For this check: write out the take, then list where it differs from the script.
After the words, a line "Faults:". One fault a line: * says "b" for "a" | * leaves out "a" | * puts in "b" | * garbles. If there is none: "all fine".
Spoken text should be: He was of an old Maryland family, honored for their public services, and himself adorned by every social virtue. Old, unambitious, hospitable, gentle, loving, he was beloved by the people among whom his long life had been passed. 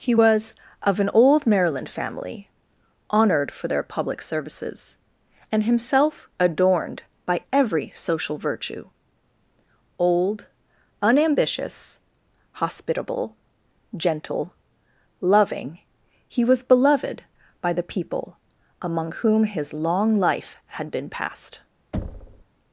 He was of an old Maryland family, honored for their public services, and himself adorned by every social virtue. Old, unambitious, hospitable, gentle, loving, he was beloved by the people among whom his long life had been passed.
Faults:
all fine